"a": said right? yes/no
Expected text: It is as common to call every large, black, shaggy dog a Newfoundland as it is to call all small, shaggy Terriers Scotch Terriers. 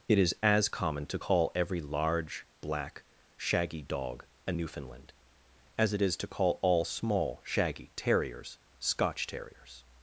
yes